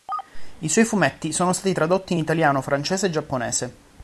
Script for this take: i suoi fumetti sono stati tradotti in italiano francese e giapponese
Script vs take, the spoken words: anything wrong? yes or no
no